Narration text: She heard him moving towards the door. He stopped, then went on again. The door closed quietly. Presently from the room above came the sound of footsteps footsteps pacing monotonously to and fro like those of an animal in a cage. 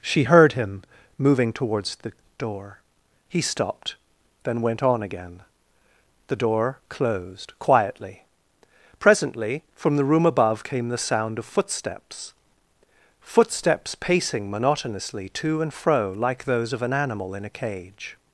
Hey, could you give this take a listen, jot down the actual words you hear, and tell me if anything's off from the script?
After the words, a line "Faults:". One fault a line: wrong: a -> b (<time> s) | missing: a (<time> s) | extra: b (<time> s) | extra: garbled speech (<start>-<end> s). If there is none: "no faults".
She heard him moving towards the door. He stopped, then went on again. The door closed quietly. Presently from the room above came the sound of footsteps footsteps pacing monotonously to and fro like those of an animal in a cage.
Faults:
no faults